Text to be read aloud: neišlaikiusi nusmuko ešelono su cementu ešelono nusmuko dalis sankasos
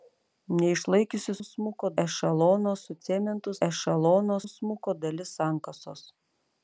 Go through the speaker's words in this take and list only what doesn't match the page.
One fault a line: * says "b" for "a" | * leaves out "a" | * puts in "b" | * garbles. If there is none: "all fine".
all fine